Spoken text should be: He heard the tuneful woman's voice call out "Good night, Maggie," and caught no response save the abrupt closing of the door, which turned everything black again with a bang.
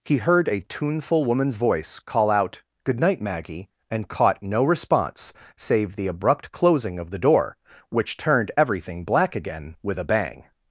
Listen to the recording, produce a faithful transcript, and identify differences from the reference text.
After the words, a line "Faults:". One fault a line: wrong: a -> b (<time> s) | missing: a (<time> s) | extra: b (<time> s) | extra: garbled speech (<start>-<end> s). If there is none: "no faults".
He heard a tuneful woman's voice call out "Good night, Maggie," and caught no response save the abrupt closing of the door, which turned everything black again with a bang.
Faults:
wrong: the -> a (0.5 s)